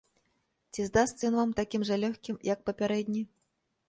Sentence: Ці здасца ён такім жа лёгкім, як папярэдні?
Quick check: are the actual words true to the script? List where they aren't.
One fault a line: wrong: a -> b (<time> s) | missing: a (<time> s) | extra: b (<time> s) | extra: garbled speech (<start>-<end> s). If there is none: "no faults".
extra: вам (1.4 s)